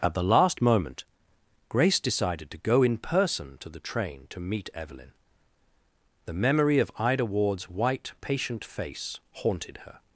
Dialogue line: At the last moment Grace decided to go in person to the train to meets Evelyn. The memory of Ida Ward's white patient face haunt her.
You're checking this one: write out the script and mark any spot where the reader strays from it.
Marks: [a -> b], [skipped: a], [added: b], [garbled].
At the last moment Grace decided to go in person to the train to [meets -> meet] Evelyn. The memory of Ida Ward's white patient face [haunt -> haunted] her.